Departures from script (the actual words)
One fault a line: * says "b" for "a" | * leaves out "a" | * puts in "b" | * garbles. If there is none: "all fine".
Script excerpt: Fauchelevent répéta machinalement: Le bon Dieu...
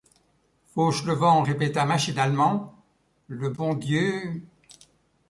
all fine